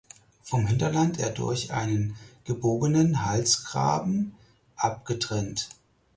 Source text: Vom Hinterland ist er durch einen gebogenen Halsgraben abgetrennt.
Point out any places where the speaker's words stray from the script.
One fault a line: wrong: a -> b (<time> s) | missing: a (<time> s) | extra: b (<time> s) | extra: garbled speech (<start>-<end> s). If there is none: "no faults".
missing: ist (1.2 s)